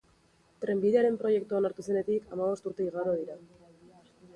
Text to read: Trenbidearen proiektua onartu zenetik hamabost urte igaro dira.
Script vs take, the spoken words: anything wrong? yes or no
no